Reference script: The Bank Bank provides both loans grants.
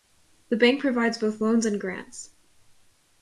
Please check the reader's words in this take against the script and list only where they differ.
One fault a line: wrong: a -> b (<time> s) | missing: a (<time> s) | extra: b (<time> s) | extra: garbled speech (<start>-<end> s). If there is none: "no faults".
missing: Bank (0.8 s)
extra: and (1.7 s)